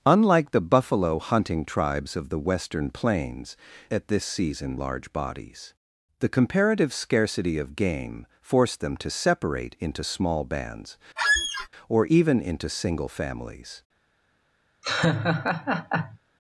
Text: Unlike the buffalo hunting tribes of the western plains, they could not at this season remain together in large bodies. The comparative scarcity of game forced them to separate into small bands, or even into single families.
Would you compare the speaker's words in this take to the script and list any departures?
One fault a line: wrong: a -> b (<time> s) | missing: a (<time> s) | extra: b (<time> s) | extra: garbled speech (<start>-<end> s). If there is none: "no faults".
missing: they could not (3.5 s)
missing: remain together in (4.8 s)